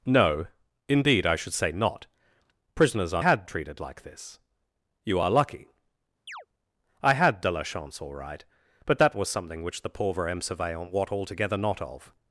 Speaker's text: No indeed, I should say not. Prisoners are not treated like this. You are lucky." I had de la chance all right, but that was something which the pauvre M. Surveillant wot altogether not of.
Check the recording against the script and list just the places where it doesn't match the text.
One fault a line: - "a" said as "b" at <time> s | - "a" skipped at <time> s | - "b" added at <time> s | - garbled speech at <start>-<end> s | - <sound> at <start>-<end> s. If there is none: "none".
- "not" said as "had" at 3.2 s
- chirp at 6.3-6.5 s